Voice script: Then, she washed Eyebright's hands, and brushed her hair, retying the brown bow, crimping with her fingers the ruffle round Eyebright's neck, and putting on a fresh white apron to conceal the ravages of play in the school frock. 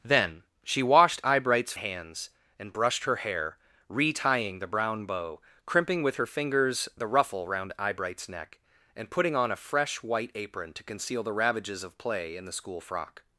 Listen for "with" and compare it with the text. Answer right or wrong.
right